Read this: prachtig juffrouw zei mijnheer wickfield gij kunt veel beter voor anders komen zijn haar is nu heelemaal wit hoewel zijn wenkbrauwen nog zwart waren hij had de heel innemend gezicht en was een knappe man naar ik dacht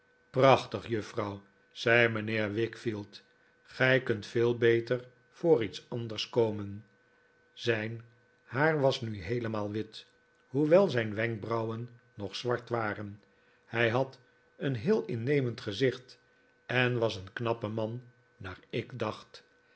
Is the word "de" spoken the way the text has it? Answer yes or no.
no